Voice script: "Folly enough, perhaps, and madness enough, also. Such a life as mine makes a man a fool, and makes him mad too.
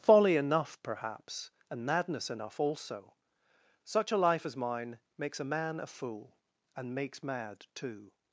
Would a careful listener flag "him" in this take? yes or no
yes